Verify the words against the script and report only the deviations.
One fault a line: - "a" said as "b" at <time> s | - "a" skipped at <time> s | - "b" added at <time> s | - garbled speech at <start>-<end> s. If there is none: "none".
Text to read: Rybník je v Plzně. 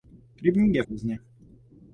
none